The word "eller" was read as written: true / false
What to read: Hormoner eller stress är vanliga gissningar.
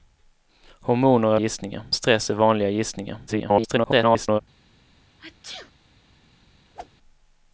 false